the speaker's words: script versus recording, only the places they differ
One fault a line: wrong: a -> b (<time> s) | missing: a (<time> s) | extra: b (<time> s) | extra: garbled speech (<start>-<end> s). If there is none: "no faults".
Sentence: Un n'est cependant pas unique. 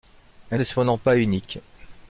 no faults